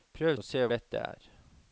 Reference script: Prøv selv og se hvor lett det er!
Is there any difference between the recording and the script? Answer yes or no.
yes